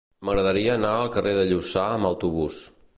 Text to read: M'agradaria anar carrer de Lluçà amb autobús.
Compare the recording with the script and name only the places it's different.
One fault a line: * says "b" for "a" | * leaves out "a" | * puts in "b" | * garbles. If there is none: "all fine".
* puts in "al"